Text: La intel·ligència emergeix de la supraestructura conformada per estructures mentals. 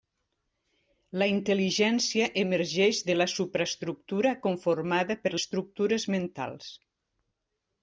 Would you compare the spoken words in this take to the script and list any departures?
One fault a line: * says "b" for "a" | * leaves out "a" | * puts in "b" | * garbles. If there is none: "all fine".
all fine